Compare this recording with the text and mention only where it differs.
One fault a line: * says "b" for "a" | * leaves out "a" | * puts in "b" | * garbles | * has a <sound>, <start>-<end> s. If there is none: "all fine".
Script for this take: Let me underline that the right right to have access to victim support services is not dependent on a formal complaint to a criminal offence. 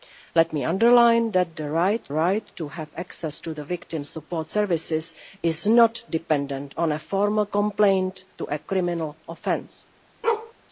* has a bark, 10.2-10.5 s